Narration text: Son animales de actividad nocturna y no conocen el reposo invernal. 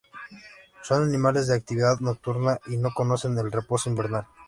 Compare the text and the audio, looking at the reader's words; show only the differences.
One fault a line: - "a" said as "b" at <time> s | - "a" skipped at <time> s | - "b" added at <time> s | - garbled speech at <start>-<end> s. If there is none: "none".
none